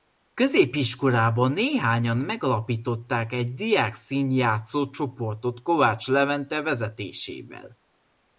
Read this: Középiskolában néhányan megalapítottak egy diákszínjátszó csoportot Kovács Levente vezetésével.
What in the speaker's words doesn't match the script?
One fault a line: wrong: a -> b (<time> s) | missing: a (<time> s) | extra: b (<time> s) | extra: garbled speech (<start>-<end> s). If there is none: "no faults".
no faults